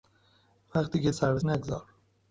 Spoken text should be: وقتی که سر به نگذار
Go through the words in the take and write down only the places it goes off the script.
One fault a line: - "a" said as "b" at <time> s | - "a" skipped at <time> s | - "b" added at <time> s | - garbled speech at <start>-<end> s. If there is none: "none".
none